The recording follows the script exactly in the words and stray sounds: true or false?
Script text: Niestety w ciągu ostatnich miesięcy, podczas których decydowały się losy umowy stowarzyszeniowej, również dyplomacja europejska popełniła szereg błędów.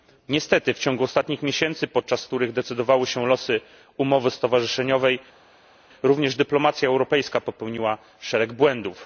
true